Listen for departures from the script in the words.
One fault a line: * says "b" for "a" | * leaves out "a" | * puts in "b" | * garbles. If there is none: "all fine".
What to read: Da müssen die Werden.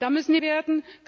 all fine